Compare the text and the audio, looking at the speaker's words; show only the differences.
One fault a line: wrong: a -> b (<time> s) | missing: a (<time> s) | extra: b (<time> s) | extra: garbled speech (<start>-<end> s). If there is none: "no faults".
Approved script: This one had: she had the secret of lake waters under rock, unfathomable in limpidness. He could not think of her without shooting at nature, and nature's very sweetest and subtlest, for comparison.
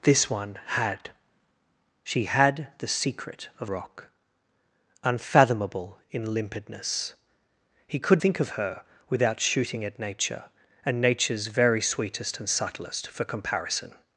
missing: lake waters under (3.7 s)
missing: not (8.2 s)